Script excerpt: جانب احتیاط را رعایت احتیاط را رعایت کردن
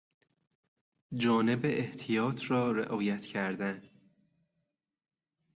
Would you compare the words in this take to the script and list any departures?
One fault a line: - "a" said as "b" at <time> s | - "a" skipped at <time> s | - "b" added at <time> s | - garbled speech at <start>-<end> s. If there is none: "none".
- "احتیاط را رعایت" skipped at 3.2 s